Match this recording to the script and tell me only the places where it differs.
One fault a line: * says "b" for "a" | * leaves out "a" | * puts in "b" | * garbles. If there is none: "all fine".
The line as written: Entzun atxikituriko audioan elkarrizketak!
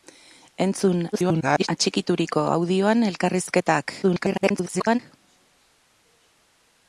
* garbles
* garbles